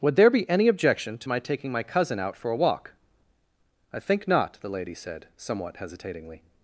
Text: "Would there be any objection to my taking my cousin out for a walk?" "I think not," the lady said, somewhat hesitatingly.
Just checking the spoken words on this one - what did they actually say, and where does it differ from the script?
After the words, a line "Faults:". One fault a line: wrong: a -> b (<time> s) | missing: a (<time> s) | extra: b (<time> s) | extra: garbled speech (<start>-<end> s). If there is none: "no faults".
"Would there be any objection to my taking my cousin out for a walk?" "I think not," the lady said, somewhat hesitatingly.
Faults:
no faults